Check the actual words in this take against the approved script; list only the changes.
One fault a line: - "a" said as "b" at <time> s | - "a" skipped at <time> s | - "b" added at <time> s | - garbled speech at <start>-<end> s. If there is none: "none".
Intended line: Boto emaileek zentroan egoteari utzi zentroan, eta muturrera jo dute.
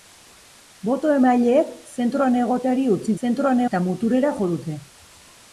none